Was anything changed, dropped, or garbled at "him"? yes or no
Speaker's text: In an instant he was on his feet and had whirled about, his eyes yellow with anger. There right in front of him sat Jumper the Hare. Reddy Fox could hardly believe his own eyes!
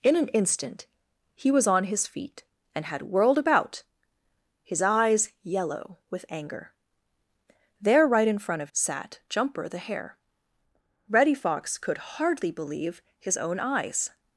yes